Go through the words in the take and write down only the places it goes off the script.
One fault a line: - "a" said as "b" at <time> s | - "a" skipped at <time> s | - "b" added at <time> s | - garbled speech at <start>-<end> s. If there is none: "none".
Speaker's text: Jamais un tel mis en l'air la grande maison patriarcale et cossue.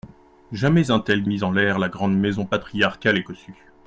none